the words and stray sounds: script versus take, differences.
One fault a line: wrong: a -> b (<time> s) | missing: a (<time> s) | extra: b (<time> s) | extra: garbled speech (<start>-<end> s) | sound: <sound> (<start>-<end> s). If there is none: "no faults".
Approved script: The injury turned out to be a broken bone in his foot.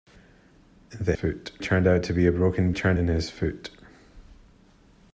wrong: injury -> foot (1.1 s)
wrong: bone -> turned (2.7 s)